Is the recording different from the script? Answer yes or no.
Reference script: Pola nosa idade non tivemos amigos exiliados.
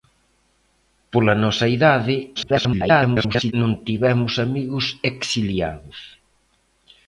yes